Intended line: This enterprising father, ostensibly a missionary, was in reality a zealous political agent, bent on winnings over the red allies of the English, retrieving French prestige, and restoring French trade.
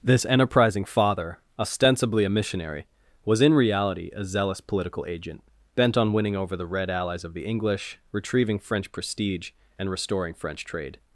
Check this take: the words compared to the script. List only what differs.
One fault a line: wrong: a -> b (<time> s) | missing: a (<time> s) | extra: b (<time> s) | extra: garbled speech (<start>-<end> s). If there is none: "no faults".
wrong: winnings -> winning (6.1 s)